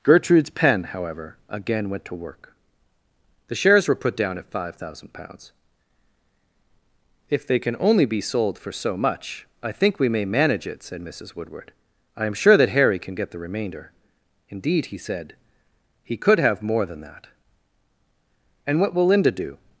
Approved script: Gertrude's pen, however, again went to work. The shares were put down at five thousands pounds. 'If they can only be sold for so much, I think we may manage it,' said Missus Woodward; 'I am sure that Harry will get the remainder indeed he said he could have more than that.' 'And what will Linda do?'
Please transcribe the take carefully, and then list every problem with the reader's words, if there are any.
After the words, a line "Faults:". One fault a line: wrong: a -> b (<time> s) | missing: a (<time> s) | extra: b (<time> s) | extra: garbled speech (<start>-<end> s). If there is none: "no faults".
Gertrude's pen, however, again went to work. The shares were put down at five thousand pounds. 'If they can only be sold for so much, I think we may manage it,' said Missus Woodward; 'I am sure that Harry can get the remainder indeed he said he could have more than that.' 'And what will Linda do?'
Faults:
wrong: thousands -> thousand (4.8 s)
wrong: will -> can (13.0 s)